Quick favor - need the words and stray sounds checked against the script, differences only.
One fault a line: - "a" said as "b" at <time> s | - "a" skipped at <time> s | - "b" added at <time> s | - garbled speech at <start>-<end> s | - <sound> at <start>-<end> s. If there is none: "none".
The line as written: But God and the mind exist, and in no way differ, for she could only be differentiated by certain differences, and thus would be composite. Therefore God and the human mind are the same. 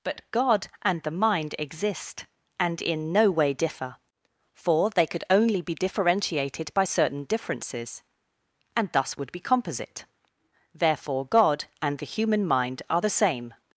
- "she" said as "they" at 4.9 s